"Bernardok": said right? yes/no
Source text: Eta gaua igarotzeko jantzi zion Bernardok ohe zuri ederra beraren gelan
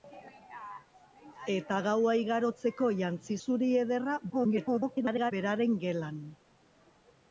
no